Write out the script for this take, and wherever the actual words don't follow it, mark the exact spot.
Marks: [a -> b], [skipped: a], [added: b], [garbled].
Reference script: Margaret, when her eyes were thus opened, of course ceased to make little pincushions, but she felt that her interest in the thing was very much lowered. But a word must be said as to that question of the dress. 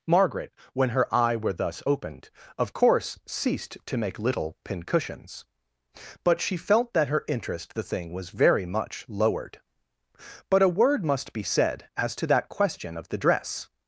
Margaret, when her [eyes -> eye] were thus opened, of course ceased to make little pincushions, but she felt that her interest [skipped: in] the thing was very much lowered. But a word must be said as to that question of the dress.